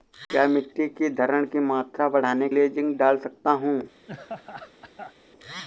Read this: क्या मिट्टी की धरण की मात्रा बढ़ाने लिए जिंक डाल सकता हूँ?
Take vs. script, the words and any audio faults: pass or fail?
fail